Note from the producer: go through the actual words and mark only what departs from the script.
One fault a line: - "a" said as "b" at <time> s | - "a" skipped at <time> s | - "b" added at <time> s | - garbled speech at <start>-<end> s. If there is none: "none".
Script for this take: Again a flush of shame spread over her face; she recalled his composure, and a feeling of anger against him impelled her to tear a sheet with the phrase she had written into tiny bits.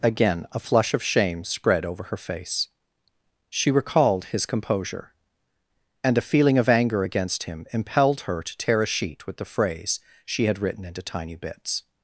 none